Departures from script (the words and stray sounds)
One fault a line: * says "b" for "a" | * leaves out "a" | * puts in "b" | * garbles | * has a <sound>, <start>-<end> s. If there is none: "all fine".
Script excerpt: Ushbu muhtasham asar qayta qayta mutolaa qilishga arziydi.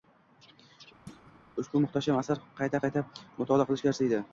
* has a thud, 1.1-1.4 s